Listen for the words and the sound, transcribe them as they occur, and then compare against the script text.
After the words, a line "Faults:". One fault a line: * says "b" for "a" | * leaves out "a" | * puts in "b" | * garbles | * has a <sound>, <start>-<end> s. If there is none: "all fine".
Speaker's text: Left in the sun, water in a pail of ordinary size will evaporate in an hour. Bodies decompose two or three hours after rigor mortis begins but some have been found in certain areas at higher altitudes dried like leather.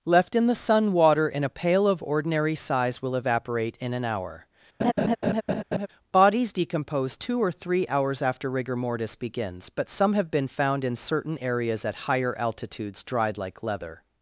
Left in the sun, water in a pail of ordinary size will evaporate in an hour. Bodies decompose two or three hours after rigor mortis begins but some have been found in certain areas at higher altitudes dried like leather.
Faults:
* has a laugh, 4.8-5.9 s